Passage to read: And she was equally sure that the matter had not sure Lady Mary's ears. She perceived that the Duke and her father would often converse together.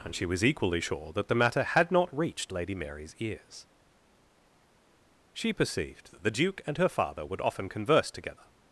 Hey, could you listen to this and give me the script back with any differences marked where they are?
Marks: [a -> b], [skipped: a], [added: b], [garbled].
And she was equally sure that the matter had not [sure -> reached] Lady Mary's ears. She perceived that the Duke and her father would often converse together.